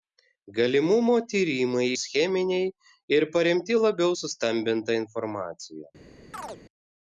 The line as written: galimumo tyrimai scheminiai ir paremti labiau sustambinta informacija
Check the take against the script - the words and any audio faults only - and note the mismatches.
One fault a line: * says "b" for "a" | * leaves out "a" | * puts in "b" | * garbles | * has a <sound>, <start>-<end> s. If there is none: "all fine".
* has a chirp, 6.3-6.6 s